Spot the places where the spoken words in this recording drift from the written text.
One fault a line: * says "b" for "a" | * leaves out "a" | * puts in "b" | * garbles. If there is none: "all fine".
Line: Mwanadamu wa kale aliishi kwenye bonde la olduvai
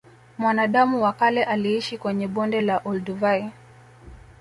all fine